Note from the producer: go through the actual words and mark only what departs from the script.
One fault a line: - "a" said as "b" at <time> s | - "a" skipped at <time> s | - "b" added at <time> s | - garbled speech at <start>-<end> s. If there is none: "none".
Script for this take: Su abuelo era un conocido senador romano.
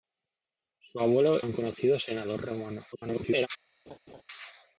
- "era" skipped at 1.4 s
- garbled speech at 2.9-3.5 s